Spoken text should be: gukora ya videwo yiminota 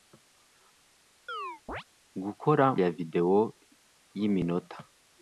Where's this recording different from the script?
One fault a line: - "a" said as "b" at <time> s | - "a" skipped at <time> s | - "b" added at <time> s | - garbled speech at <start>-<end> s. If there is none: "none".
none